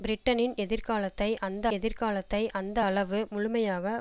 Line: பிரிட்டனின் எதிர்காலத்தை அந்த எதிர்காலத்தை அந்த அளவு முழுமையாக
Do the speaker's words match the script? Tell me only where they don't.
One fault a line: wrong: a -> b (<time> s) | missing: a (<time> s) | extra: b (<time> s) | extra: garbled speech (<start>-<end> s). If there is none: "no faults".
no faults